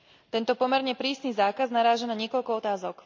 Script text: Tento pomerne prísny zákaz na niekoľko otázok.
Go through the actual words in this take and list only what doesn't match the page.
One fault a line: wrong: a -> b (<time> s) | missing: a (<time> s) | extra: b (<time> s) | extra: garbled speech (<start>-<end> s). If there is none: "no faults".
extra: naráža (1.7 s)